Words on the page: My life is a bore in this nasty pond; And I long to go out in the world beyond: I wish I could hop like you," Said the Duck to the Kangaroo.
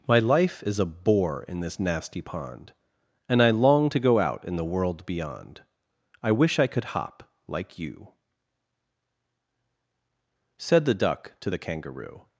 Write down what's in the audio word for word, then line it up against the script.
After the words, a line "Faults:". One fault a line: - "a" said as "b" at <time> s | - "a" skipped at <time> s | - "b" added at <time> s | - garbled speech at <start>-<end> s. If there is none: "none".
My life is a bore in this nasty pond; And I long to go out in the world beyond: I wish I could hop like you," Said the Duck to the Kangaroo.
Faults:
none